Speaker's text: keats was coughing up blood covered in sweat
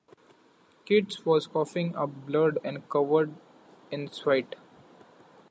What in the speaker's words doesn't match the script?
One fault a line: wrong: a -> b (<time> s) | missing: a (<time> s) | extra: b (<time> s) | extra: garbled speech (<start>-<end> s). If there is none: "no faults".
extra: and (2.6 s)